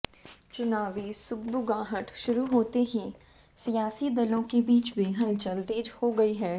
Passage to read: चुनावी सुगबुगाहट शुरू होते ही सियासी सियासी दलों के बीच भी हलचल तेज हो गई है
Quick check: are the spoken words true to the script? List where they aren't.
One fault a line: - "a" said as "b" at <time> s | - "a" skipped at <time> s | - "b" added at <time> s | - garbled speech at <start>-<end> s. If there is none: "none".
- "सियासी" skipped at 4.1 s